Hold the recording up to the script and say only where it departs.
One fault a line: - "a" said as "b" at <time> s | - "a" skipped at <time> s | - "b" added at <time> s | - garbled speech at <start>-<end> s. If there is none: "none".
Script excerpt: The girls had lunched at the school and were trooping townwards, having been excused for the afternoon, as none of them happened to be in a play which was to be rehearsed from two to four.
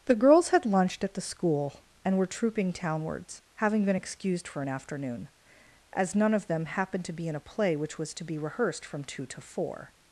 - "the" said as "an" at 4.6 s